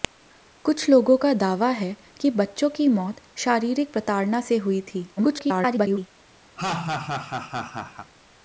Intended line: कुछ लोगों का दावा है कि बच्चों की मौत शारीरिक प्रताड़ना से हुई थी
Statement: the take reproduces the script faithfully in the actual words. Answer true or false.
false